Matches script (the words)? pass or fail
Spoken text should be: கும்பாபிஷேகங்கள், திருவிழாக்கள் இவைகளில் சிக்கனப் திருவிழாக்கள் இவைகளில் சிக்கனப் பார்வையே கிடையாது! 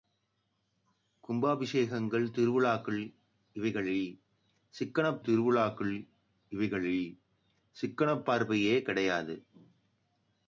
pass